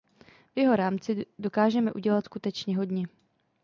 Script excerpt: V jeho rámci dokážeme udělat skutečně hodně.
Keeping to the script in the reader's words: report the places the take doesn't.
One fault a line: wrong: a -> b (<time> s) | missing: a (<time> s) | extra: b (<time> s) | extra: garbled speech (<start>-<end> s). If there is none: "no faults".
no faults